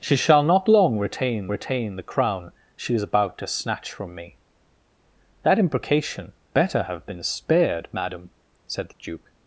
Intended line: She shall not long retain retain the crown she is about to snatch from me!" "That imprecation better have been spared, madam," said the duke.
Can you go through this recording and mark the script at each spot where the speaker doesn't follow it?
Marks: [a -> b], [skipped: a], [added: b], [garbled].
She shall not long retain retain the crown she is about to snatch from me!" "That imprecation better have been spared, madam," said the duke.